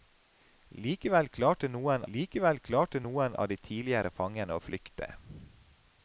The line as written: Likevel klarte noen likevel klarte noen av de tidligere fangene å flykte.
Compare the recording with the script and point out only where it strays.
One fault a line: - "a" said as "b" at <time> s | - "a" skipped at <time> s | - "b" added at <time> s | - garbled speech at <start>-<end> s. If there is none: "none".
none